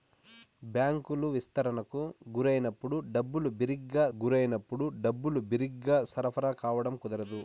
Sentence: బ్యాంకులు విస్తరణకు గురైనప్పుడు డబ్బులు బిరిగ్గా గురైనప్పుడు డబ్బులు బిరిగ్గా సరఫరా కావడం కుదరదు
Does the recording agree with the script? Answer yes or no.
yes